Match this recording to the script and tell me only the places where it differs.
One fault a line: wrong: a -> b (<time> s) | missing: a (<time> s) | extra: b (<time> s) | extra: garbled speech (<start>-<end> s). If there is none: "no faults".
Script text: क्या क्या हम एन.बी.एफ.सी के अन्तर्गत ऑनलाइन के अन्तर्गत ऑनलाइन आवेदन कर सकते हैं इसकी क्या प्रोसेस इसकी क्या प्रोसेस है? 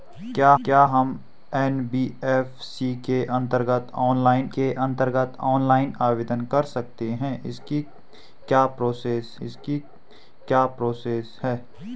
no faults